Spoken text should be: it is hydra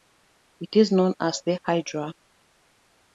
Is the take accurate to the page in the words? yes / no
no